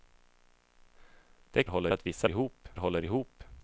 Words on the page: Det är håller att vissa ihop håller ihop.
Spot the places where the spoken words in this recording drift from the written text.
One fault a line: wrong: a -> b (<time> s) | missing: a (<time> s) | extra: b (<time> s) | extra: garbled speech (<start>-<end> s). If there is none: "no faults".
no faults